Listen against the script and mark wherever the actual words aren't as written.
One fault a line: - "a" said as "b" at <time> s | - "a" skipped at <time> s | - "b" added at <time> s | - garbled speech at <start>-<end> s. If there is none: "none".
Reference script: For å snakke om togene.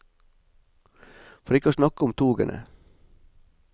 - "ikke" added at 1.6 s